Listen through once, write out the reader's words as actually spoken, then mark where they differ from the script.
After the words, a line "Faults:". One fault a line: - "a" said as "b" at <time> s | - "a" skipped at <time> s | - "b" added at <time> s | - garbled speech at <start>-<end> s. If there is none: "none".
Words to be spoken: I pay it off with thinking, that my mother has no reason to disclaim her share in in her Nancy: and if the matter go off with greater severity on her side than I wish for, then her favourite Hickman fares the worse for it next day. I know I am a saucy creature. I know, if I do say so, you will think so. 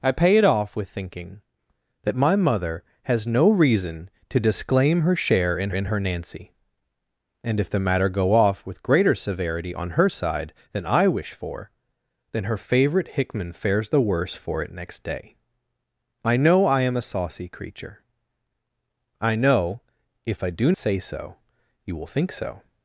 I pay it off with thinking, that my mother has no reason to disclaim her share in in her Nancy: and if the matter go off with greater severity on her side than I wish for, then her favourite Hickman fares the worse for it next day. I know I am a saucy creature. I know, if I do say so, you will think so.
Faults:
none